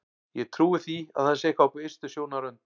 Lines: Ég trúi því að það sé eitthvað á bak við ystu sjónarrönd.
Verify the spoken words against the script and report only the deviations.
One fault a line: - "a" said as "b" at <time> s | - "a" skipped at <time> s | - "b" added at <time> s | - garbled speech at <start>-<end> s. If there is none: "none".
- "bak" skipped at 1.8 s